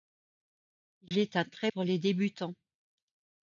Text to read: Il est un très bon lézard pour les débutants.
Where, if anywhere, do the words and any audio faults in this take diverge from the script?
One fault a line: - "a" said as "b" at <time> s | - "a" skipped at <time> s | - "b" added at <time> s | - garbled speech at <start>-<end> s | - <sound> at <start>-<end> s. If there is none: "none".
- dropout at 1.1-1.1 s
- "bon lézard" skipped at 1.7 s